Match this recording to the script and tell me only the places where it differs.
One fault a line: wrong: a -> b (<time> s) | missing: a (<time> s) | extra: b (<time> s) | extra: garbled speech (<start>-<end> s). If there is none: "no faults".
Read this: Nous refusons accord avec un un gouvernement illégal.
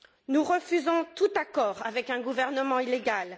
extra: tout (1.1 s)
missing: un (2.2 s)